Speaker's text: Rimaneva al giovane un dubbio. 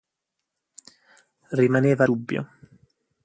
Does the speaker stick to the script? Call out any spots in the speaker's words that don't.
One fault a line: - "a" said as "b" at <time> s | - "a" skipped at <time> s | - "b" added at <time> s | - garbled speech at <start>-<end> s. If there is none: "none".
- "al giovane un" skipped at 2.0 s